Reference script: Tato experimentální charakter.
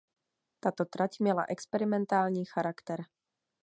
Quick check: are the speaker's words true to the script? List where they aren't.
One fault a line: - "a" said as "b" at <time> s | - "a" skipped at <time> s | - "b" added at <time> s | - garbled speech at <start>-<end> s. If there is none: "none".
- "trať měla" added at 0.8 s